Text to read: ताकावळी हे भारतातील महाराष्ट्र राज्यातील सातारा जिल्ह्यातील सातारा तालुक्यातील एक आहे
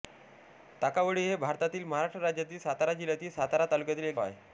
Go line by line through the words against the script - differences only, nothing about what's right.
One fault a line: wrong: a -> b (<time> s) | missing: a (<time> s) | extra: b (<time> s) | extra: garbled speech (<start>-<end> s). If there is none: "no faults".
no faults